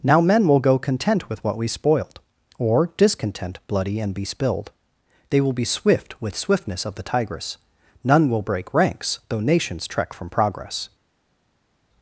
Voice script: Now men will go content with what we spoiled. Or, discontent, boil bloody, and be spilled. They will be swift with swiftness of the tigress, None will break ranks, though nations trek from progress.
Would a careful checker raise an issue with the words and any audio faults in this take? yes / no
yes